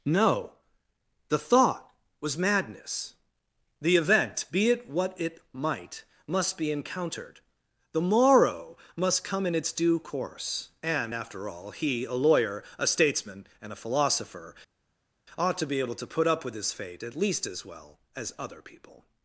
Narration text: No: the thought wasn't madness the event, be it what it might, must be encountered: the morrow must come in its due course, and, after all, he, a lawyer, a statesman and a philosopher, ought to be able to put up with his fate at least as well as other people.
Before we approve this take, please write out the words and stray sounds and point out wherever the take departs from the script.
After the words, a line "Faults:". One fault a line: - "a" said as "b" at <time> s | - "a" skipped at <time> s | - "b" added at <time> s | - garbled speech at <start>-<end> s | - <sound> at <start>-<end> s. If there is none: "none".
No: the thought was madness the event, be it what it might, must be encountered: the morrow must come in its due course, and, after all, he, a lawyer, a statesman and a philosopher, ought to be able to put up with his fate at least as well as other people.
Faults:
- "wasn't" said as "was" at 2.2 s